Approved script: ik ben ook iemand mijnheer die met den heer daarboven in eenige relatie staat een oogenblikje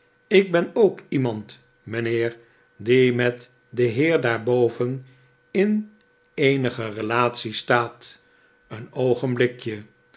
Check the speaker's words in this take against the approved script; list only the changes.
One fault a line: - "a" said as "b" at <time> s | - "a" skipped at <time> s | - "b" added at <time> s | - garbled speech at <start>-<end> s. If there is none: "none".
none